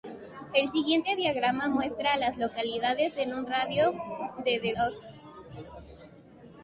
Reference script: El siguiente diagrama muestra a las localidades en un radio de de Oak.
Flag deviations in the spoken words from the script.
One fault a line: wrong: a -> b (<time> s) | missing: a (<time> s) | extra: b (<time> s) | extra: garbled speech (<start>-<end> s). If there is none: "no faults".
no faults